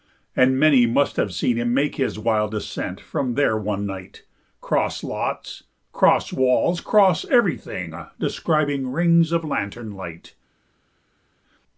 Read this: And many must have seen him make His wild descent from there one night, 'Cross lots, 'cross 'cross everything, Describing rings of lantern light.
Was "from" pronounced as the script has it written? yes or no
yes